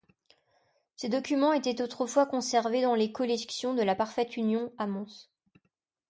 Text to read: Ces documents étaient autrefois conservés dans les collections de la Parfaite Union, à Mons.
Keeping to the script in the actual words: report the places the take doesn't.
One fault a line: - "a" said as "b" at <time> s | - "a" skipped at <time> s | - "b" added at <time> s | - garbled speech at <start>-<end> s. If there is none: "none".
none